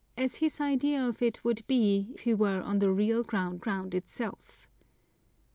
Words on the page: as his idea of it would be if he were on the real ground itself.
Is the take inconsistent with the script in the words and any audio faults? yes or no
yes